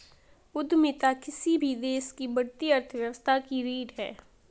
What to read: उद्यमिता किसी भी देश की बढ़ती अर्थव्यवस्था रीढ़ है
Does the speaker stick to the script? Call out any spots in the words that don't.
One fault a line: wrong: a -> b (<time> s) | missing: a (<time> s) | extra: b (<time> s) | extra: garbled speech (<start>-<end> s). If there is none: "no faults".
extra: की (3.4 s)